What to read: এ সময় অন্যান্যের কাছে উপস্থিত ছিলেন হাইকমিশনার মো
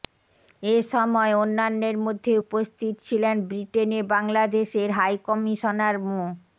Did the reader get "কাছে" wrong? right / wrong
wrong